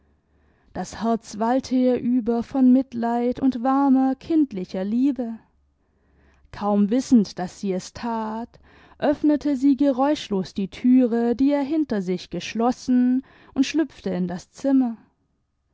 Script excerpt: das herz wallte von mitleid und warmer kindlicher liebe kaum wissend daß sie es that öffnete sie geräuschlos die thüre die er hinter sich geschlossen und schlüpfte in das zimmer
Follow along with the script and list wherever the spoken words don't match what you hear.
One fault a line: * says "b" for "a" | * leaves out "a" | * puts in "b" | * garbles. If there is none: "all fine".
* puts in "ihr über"